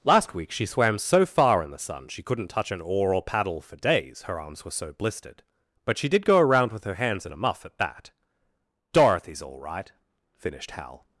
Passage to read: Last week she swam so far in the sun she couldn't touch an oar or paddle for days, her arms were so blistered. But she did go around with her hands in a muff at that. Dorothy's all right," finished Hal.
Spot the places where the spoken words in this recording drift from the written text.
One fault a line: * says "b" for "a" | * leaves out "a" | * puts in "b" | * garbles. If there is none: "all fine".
all fine